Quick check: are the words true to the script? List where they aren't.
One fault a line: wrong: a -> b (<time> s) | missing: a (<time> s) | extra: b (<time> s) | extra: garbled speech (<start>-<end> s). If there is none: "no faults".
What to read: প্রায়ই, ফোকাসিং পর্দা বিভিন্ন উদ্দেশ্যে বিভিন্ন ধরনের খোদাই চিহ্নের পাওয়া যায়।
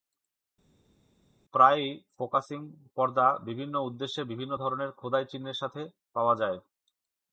extra: সাথে (5.6 s)